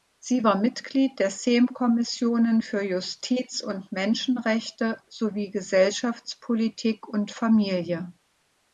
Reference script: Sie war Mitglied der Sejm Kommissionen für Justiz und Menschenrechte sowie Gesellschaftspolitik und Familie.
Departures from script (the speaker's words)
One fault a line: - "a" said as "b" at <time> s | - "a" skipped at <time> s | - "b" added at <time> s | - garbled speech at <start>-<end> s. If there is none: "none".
none